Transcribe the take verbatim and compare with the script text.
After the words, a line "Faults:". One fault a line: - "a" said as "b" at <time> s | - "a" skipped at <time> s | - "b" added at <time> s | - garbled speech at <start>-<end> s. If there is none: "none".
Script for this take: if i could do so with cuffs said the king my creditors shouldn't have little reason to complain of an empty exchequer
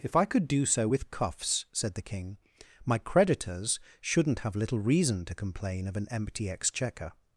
if i could do so with cuffs said the king my creditors shouldn't have little reason to complain of an empty exchequer
Faults:
none